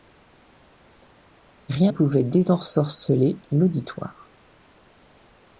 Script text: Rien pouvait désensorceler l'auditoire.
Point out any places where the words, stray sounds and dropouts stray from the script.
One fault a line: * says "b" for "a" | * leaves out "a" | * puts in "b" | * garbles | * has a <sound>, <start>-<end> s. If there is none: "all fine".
all fine